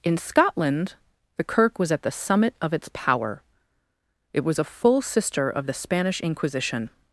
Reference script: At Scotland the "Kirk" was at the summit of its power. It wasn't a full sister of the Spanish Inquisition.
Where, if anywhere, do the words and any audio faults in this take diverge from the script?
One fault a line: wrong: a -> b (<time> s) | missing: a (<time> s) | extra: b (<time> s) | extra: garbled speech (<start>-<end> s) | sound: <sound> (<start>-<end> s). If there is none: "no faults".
wrong: At -> In (0.0 s)
wrong: wasn't -> was (4.4 s)